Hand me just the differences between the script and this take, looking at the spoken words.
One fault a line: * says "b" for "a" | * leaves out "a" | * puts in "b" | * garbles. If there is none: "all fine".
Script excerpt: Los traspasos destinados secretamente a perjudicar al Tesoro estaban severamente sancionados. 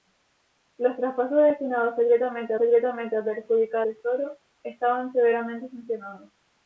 * puts in "secretamente"
* leaves out "al"